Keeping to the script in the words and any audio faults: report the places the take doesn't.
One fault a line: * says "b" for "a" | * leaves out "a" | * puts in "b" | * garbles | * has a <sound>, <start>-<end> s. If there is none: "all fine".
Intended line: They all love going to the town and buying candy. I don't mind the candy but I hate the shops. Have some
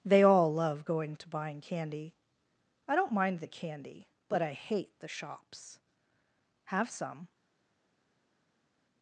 * leaves out "the town and"